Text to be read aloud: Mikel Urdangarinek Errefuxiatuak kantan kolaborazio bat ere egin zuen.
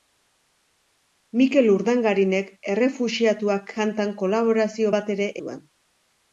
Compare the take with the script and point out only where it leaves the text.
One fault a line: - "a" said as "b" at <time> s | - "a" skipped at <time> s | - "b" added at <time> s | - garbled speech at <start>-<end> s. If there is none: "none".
- "egin" skipped at 5.3 s